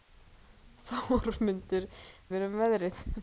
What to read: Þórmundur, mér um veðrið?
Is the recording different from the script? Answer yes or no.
no